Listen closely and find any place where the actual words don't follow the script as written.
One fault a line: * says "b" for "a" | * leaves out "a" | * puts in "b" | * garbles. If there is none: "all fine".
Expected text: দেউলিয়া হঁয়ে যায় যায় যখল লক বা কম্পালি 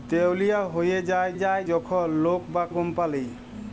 all fine